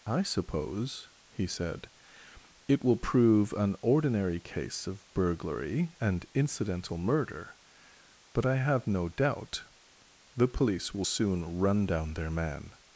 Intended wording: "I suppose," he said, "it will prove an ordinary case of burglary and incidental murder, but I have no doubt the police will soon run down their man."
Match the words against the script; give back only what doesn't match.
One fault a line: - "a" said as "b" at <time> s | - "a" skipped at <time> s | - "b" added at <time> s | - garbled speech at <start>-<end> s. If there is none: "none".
none